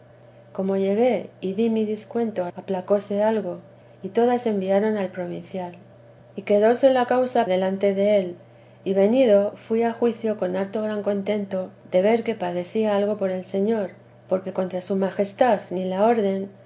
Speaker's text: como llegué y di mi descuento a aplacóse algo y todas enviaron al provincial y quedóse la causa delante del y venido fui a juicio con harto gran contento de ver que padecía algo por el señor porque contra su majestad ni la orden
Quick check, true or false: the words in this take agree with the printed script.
true